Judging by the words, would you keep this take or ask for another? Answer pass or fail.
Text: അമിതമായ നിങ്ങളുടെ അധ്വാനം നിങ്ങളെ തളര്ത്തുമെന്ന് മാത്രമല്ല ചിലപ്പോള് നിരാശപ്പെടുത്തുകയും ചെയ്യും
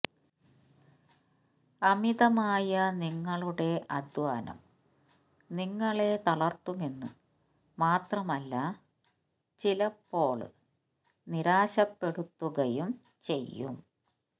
pass